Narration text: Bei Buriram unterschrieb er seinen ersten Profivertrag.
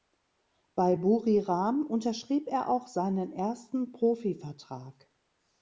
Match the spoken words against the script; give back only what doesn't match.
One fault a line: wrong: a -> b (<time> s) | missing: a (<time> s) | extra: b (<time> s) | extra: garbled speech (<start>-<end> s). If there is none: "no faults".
extra: auch (2.7 s)